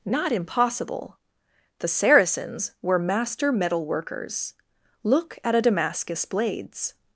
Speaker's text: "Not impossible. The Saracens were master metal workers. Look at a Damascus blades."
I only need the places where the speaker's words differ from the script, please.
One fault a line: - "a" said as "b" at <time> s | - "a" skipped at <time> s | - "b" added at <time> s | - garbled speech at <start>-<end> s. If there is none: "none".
none